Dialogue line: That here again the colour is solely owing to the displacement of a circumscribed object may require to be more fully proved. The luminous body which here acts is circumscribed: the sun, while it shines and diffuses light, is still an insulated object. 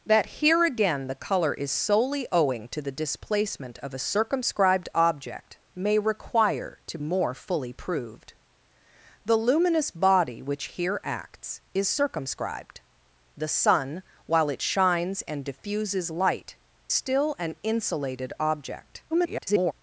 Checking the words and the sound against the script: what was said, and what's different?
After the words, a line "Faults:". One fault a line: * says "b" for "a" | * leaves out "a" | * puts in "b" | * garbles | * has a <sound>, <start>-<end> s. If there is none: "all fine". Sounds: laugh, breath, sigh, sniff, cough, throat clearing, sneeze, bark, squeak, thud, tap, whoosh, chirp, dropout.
That here again the colour is solely owing to the displacement of a circumscribed object may require to more fully proved. The luminous body which here acts is circumscribed: the sun, while it shines and diffuses light, still an insulated object. [garbled]
Faults:
* leaves out "be"
* leaves out "is"
* garbles